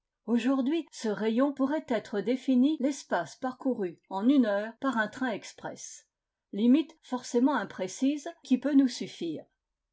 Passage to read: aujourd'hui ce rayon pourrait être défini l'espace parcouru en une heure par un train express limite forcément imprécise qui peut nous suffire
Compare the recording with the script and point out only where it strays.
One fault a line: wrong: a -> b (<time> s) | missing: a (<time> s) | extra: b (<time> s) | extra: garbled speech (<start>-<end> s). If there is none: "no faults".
no faults